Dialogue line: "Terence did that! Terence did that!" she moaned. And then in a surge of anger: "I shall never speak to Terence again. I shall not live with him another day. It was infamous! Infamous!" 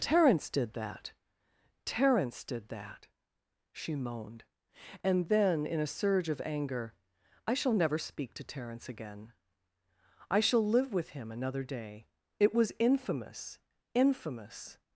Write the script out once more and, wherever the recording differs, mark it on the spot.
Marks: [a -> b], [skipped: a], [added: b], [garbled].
"Terence did that! Terence did that!" she moaned. And then in a surge of anger: "I shall never speak to Terence again. I shall [skipped: not] live with him another day. It was infamous! Infamous!"